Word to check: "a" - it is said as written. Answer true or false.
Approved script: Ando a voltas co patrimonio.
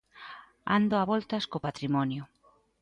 true